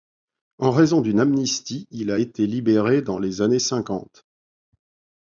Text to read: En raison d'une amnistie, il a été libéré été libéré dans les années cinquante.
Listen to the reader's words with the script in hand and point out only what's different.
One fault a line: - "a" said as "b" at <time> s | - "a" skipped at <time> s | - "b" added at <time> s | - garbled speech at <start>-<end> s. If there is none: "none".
- "été libéré" skipped at 3.0 s